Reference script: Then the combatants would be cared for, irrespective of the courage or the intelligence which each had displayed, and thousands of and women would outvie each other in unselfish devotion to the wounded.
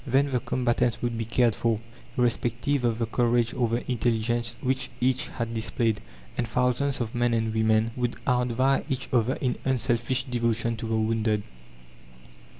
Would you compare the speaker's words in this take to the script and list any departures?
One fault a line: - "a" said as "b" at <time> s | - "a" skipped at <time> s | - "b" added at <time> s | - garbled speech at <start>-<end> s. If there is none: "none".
- "men" added at 7.1 s